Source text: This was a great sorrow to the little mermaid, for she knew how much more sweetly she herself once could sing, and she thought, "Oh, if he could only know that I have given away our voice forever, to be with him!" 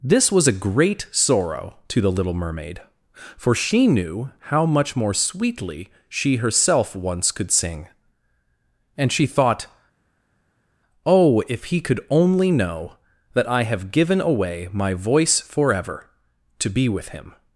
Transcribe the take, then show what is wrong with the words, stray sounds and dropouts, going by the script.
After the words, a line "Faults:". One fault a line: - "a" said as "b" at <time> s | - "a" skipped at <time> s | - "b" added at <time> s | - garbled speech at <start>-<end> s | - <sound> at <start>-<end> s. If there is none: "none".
This was a great sorrow to the little mermaid, for she knew how much more sweetly she herself once could sing, and she thought, "Oh, if he could only know that I have given away my voice forever, to be with him!"
Faults:
- "our" said as "my" at 14.7 s